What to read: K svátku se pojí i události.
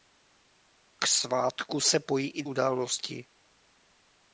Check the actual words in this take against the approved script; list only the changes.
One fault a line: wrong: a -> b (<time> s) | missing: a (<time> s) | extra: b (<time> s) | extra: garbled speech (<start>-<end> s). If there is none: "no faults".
no faults